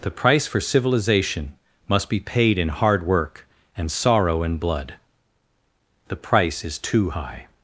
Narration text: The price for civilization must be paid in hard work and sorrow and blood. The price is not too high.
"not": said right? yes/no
no